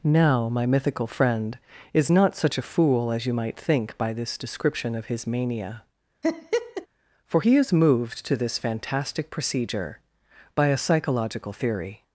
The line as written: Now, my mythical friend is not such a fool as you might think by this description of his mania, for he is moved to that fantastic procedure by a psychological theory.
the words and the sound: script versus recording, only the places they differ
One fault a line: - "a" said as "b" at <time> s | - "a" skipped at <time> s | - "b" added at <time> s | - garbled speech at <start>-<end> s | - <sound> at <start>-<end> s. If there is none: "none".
- laugh at 6.2-6.9 s
- "that" said as "this" at 8.3 s